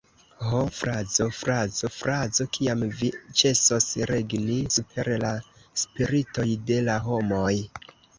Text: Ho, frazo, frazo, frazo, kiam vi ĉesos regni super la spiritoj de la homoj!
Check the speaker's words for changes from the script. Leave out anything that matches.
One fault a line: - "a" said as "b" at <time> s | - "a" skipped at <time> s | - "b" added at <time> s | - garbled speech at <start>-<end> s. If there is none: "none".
none